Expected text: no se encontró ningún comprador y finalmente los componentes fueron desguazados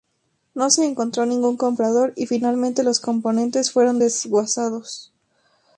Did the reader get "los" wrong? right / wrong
right